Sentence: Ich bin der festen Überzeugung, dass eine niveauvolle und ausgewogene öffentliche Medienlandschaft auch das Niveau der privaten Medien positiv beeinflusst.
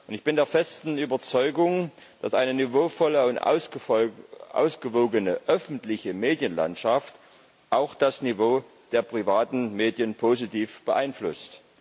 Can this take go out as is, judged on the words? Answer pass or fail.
pass